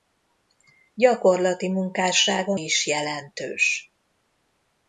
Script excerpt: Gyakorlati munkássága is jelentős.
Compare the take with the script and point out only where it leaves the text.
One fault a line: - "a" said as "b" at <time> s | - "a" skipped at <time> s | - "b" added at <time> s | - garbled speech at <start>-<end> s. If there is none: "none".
none